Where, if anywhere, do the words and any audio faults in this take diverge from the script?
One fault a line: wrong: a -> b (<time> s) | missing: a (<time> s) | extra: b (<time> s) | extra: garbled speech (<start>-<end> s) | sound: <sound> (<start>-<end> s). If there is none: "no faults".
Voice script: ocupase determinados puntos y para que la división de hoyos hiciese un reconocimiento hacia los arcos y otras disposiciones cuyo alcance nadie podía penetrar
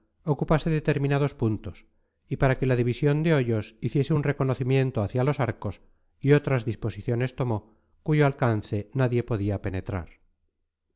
extra: tomó (7.4 s)